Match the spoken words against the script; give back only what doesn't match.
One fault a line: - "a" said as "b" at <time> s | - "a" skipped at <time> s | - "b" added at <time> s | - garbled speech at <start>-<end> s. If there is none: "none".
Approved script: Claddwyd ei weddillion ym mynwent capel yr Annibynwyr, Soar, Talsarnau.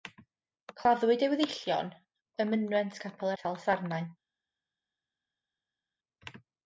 - "yr Annibynwyr Soar" skipped at 3.3 s